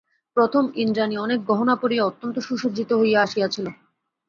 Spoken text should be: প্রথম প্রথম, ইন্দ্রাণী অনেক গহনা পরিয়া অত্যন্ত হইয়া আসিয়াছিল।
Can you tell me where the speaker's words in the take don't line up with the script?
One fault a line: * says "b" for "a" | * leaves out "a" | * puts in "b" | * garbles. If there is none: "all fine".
* leaves out "প্রথম"
* puts in "সুসজ্জিত"